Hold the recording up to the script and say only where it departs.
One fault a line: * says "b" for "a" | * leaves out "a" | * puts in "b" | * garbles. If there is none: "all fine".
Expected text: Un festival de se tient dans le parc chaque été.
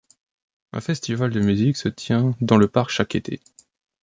* puts in "musique"